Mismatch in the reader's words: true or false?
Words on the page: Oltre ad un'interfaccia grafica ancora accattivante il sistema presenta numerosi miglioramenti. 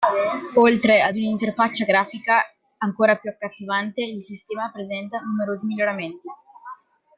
true